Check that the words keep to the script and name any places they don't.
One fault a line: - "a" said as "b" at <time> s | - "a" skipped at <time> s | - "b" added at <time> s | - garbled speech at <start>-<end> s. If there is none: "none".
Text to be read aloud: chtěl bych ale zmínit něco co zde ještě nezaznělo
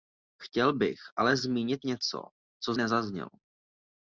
- "zde ještě" skipped at 2.7 s